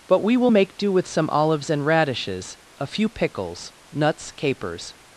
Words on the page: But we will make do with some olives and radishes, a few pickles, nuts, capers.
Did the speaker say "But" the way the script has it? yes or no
yes